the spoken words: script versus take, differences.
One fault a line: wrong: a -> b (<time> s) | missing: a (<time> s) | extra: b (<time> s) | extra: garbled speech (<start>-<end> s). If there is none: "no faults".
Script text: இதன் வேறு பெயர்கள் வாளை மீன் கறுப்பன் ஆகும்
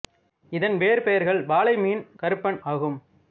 no faults